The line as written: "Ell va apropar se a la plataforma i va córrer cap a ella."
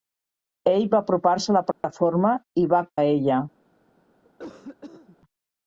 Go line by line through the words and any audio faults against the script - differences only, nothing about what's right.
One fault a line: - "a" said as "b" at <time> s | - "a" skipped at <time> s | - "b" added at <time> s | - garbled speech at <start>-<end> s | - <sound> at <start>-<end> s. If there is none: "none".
- dropout at 1.7-1.8 s
- "córrer cap" skipped at 2.8 s
- cough at 4.2-5.2 s